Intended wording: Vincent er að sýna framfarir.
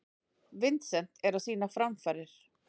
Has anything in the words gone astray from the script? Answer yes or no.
no